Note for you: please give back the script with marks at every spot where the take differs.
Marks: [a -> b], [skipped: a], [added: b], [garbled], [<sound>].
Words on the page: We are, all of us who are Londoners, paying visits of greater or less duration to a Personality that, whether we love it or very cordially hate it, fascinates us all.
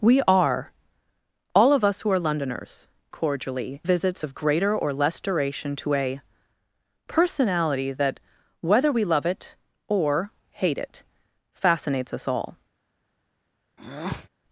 We are, all of us who are Londoners, [paying -> cordially] visits of greater or less duration to a Personality that, whether we love it or [skipped: very cordially] hate it, fascinates us all. [breath]